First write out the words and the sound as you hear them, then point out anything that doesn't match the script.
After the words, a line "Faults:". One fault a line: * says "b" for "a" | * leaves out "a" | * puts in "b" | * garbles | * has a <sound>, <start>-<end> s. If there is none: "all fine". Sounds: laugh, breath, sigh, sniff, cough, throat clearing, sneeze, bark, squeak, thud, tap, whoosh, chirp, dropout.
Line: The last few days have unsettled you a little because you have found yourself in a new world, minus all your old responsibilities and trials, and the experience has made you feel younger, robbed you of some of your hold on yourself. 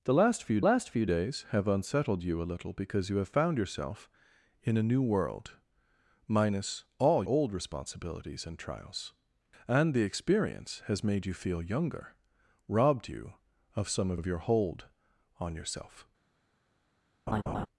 The last few last few days have unsettled you a little because you have found yourself in a new world, minus all old responsibilities and trials, and the experience has made you feel younger, robbed you of some of of your hold on yourself.
Faults:
* puts in "last few"
* leaves out "your"
* puts in "of"
* has a laugh, 17.3-17.7 s